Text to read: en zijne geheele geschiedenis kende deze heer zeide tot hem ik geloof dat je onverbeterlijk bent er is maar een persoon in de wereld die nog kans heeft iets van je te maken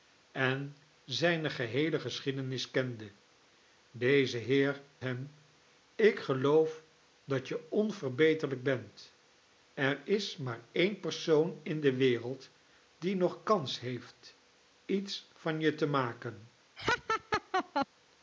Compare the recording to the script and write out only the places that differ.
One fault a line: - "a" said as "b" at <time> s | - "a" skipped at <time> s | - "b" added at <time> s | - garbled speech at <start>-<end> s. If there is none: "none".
- "zeide tot" skipped at 4.8 s